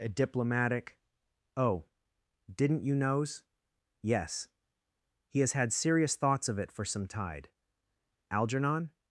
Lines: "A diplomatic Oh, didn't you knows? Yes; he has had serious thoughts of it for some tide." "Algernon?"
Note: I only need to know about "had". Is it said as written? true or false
true